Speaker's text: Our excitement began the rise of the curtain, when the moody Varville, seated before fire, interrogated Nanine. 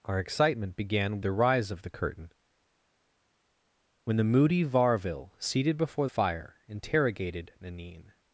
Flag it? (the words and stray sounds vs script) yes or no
no